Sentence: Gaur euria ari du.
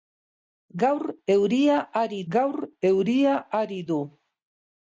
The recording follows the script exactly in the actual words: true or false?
false